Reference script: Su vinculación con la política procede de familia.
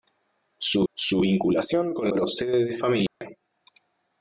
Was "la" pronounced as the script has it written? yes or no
no